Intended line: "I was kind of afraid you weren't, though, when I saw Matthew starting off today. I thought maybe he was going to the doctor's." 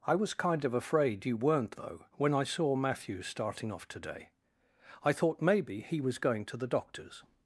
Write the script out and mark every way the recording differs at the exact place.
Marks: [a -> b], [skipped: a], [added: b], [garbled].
"I was kind of afraid you weren't, though, when I saw Matthew starting off today. I thought maybe he was going to the doctor's."